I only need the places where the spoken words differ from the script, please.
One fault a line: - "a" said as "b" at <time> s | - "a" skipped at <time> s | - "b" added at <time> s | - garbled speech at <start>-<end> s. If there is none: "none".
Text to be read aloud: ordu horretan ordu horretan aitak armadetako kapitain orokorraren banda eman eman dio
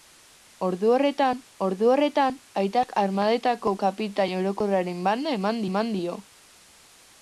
none